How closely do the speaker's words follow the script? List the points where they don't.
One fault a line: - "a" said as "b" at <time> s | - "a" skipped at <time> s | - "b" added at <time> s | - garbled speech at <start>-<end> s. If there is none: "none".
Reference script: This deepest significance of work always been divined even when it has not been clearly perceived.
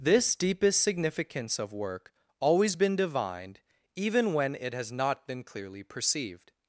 none